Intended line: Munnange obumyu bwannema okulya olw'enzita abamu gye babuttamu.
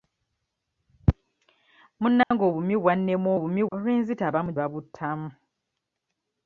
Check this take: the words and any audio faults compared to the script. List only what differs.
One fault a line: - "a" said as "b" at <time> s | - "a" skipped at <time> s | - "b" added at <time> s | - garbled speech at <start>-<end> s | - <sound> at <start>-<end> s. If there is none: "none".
- dropout at 2.2-2.3 s
- "okulya" said as "obumyu" at 3.4 s
- "gye" skipped at 4.5 s